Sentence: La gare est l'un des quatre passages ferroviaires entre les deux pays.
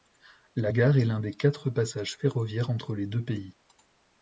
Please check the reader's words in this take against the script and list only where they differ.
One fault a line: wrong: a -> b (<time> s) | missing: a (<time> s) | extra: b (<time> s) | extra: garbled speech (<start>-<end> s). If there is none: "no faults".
no faults